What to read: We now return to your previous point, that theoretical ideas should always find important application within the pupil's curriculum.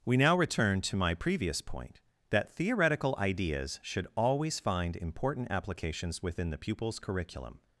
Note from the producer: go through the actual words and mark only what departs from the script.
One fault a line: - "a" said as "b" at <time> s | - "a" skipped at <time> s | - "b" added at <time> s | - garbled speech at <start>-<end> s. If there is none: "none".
- "your" said as "my" at 0.9 s
- "application" said as "applications" at 5.5 s